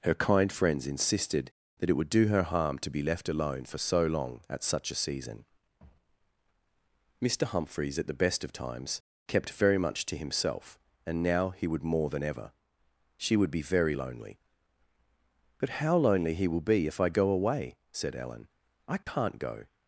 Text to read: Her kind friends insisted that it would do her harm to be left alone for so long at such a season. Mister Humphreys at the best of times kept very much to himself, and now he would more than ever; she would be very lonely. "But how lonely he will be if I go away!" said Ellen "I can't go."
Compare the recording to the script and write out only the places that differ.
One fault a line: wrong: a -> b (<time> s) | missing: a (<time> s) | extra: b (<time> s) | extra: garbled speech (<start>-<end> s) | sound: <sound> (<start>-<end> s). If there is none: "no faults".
sound: dropout (19.0-19.1 s)